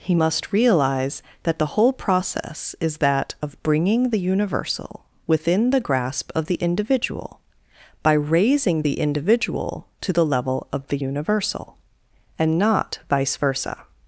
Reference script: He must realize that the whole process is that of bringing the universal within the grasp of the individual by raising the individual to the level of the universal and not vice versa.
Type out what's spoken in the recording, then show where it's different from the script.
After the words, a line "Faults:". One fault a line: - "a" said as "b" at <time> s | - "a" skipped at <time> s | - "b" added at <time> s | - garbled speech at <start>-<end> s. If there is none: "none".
He must realize that the whole process is that of bringing the universal within the grasp of the individual by raising the individual to the level of the universal and not vice versa.
Faults:
none